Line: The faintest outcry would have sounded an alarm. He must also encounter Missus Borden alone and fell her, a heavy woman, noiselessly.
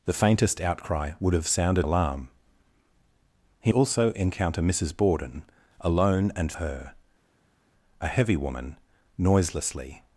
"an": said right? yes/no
no